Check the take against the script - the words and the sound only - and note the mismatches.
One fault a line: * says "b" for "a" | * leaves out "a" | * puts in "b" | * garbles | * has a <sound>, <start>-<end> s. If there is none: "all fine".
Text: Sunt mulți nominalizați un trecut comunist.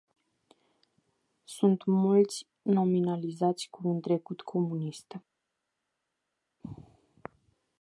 * puts in "cu"